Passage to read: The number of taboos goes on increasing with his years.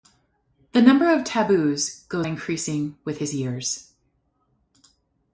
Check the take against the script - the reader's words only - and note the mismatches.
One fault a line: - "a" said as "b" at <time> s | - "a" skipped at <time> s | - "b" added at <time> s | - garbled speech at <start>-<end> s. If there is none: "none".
- "on" skipped at 2.3 s